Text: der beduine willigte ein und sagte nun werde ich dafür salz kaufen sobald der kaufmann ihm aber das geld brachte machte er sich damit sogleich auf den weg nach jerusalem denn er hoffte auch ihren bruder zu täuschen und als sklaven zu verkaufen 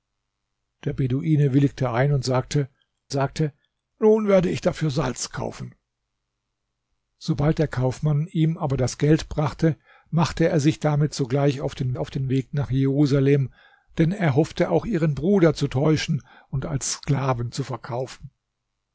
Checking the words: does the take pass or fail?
fail